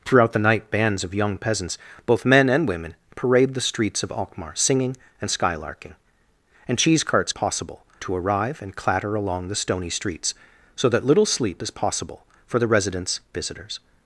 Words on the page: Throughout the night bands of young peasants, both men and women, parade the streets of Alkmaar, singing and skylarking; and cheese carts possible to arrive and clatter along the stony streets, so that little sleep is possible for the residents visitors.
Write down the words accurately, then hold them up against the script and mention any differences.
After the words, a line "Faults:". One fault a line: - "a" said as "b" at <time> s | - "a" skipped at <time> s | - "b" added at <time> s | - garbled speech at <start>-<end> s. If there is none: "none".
Throughout the night bands of young peasants, both men and women, parade the streets of Alkmaar, singing and skylarking; and cheese carts possible to arrive and clatter along the stony streets, so that little sleep is possible for the residents visitors.
Faults:
none